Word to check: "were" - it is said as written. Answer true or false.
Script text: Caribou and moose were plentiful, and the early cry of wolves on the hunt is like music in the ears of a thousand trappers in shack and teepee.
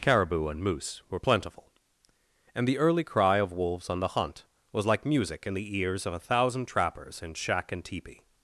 true